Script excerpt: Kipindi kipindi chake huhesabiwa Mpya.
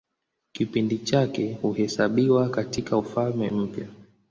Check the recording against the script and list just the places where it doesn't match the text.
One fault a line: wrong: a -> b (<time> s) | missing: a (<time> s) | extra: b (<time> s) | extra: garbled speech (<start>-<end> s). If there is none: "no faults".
missing: kipindi (1.0 s)
extra: katIka Ufalme (2.5 s)